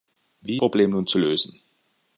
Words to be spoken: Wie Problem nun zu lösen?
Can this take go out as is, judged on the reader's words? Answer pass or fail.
pass